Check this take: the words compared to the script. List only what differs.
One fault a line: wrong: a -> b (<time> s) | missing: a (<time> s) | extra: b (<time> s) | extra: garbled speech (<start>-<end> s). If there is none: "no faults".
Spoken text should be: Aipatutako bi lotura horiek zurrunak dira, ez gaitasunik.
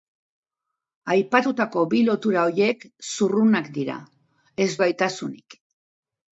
no faults